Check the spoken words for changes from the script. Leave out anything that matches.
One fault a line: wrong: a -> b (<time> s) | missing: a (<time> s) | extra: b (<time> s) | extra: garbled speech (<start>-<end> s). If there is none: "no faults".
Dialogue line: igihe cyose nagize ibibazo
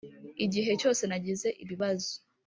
no faults